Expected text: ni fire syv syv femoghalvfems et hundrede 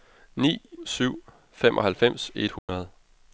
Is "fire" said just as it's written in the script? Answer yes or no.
no